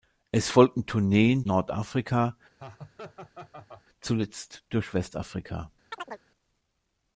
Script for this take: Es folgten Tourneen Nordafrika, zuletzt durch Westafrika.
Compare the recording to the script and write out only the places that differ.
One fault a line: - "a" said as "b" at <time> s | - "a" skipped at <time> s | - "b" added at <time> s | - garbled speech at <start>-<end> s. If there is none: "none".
none